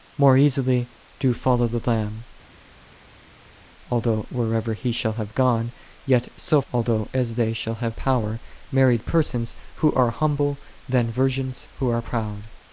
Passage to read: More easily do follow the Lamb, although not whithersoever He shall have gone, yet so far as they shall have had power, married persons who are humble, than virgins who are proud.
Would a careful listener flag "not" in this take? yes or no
yes